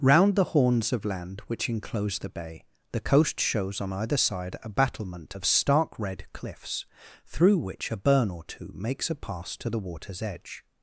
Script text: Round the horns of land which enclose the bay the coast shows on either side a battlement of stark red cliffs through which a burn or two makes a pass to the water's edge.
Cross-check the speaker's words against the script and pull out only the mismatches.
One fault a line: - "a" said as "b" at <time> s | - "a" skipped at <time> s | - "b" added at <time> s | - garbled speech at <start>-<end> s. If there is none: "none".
none